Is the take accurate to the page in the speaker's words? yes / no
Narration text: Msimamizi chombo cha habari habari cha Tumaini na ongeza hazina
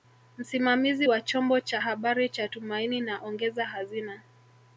no